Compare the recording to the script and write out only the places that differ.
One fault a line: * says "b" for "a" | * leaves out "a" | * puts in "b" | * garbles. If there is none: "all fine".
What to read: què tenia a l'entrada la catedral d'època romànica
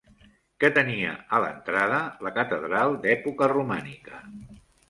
all fine